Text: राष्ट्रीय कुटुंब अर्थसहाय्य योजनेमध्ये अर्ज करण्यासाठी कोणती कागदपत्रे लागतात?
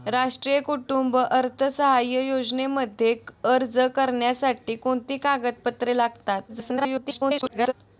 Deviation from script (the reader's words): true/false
true